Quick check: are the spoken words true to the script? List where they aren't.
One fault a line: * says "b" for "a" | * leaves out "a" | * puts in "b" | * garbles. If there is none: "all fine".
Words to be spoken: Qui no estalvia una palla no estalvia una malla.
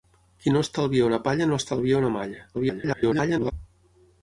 * garbles